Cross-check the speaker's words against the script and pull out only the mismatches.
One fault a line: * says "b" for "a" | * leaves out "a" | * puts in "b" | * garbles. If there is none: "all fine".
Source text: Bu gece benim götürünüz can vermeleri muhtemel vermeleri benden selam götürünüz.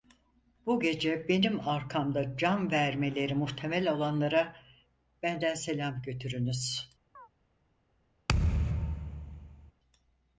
* says "arkamda" for "götürünüz"
* says "olanlara" for "vermeleri"